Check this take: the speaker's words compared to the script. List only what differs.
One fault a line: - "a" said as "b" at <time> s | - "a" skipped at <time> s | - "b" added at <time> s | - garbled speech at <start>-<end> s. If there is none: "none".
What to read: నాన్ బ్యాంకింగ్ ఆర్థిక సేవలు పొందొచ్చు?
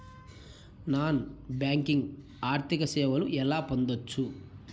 - "ఎలా" added at 3.2 s